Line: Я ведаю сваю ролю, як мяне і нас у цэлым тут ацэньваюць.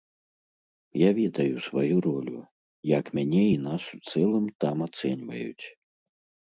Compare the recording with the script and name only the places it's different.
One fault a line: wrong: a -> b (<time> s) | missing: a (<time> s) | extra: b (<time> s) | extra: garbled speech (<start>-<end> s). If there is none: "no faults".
wrong: тут -> там (4.6 s)